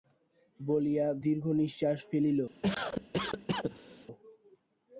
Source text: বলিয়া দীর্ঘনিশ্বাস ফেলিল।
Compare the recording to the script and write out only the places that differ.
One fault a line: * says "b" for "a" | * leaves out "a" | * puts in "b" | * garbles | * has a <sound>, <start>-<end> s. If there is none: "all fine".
* has a cough, 2.6-4.1 s